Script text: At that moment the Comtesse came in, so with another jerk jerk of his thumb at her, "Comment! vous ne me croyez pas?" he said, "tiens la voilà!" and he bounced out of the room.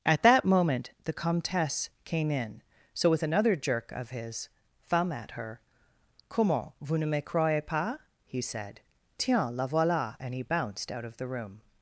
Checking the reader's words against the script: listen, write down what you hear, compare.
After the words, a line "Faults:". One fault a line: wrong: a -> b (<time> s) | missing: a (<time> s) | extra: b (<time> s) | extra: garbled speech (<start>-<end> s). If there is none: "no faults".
At that moment the Comtesse came in, so with another jerk of his thumb at her, "Comment! vous ne me croyez pas?" he said, "tiens la voilà!" and he bounced out of the room.
Faults:
missing: jerk (3.9 s)